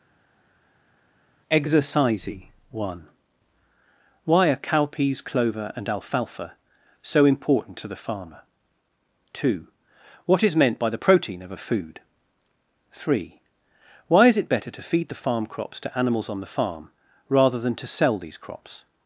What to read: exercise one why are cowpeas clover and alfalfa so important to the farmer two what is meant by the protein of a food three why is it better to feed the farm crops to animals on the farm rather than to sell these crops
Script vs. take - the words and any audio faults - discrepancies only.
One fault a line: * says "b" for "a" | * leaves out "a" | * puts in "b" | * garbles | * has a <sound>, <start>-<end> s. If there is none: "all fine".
all fine